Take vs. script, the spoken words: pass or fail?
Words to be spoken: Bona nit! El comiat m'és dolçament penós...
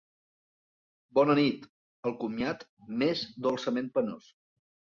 pass